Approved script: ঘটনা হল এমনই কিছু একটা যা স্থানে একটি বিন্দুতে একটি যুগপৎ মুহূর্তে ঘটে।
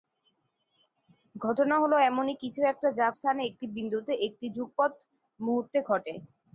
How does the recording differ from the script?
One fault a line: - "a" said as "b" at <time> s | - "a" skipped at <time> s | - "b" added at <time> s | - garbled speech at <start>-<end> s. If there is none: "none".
none